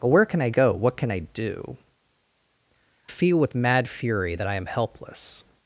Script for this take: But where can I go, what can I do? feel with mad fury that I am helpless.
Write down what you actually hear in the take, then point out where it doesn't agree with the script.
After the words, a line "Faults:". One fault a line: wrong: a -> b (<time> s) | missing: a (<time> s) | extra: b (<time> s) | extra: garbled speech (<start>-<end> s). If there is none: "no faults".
But where can I go, what can I do? feel with mad fury that I am helpless.
Faults:
no faults